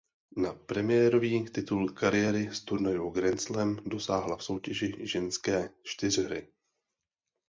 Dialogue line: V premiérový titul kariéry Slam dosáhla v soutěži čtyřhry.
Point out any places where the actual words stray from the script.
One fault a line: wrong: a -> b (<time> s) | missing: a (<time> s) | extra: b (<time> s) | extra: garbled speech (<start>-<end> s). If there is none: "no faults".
wrong: V -> Na (0.4 s)
extra: z turnajů Grand (2.5 s)
extra: ženské (5.1 s)